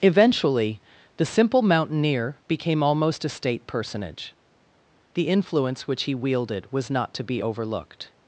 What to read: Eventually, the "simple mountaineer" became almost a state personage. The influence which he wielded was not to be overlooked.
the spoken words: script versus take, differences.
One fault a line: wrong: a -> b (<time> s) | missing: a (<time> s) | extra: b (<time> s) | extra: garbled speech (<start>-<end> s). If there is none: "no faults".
no faults